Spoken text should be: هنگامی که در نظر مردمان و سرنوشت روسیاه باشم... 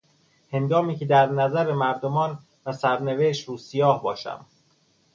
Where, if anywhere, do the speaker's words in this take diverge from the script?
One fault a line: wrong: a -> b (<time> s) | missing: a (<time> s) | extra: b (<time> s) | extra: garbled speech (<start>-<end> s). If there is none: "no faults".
no faults